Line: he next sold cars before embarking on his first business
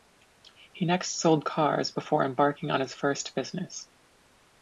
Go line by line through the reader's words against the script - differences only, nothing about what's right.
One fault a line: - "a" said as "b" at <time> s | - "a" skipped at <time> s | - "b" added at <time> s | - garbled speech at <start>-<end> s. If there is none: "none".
none